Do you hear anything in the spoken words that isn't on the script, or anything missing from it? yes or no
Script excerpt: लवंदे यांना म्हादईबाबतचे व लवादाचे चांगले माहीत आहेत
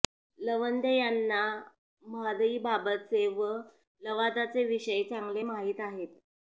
yes